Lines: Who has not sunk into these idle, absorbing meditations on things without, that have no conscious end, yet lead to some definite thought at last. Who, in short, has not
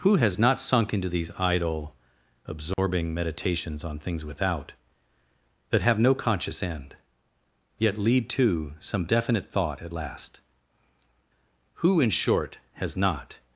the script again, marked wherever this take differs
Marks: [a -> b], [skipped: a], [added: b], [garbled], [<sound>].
Who has not sunk into these idle, absorbing [dropout] meditations on things without, that have no conscious end, yet lead to some definite thought at last. Who, in short, has not